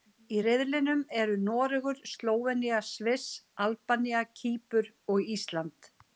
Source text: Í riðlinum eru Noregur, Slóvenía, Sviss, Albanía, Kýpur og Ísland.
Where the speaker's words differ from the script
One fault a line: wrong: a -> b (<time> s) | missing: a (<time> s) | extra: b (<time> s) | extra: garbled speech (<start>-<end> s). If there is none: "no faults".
no faults